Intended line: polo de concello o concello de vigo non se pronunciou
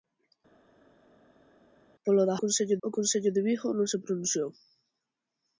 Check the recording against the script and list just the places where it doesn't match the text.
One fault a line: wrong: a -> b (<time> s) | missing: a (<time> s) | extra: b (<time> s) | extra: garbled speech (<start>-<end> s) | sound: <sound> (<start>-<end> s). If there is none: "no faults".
no faults